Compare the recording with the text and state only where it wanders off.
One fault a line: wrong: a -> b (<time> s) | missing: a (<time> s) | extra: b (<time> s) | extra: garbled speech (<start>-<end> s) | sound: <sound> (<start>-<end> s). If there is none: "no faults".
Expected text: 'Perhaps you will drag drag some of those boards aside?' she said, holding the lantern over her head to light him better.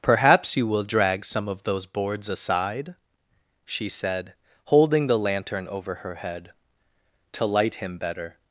missing: drag (1.2 s)